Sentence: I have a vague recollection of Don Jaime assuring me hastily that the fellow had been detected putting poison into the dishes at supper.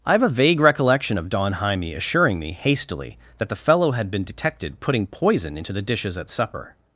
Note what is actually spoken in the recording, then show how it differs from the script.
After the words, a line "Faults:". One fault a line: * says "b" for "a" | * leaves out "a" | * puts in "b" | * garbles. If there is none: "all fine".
I have a vague recollection of Don Jaime assuring me hastily that the fellow had been detected putting poison into the dishes at supper.
Faults:
all fine